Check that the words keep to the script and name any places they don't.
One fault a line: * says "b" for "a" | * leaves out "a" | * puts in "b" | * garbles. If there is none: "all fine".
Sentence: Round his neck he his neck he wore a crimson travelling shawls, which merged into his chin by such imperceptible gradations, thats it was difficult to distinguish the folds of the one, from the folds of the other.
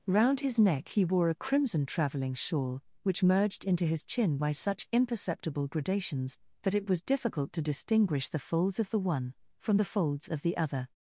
* leaves out "his neck he"
* says "shawl" for "shawls"
* says "that" for "thats"